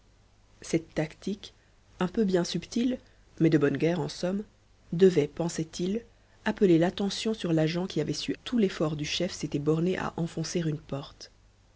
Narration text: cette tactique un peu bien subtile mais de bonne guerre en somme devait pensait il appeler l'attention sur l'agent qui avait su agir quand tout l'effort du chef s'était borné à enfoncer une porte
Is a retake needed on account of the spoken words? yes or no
yes